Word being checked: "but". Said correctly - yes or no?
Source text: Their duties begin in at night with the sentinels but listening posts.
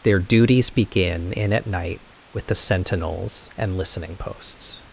no